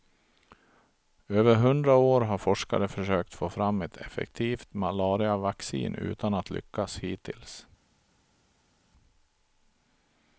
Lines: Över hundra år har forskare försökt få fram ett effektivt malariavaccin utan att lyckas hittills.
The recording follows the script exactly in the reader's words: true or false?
true